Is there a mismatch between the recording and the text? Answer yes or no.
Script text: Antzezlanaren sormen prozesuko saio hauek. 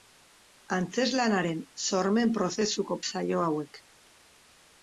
no